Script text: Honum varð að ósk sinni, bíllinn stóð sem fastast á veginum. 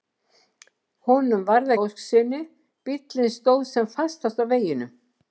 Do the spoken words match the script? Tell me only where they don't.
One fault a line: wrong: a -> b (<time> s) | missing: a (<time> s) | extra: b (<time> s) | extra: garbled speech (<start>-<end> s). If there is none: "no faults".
no faults